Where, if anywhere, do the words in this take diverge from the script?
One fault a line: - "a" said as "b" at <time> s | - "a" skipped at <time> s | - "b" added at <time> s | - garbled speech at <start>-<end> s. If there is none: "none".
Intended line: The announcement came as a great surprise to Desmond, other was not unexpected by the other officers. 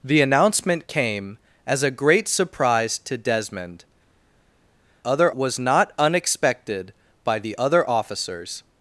none